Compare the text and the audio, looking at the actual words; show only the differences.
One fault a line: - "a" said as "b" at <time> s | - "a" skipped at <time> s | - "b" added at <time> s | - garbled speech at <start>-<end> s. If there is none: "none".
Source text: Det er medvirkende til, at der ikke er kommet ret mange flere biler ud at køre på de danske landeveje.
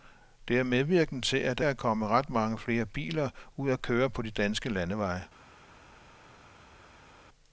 - "ikke" skipped at 1.6 s